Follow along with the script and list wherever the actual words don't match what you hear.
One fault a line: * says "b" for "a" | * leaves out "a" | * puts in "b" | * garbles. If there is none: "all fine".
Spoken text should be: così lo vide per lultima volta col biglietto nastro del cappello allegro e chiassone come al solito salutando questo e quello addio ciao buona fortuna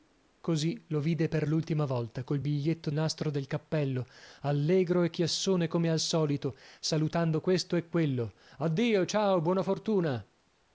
all fine